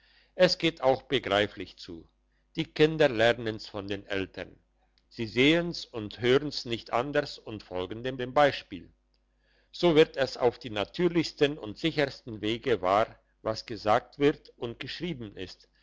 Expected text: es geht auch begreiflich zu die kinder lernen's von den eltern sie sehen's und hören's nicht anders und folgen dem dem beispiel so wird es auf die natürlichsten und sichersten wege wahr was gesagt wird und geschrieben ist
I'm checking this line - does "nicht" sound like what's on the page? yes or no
yes